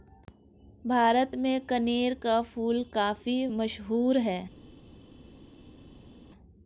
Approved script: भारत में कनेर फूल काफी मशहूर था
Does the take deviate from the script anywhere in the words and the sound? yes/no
yes